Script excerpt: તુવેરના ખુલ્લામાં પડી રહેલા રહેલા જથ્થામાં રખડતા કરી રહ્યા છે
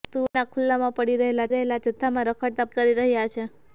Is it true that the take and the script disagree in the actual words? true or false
false